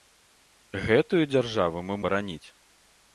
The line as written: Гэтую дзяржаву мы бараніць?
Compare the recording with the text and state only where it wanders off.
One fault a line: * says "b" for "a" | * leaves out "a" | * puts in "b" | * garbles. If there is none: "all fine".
all fine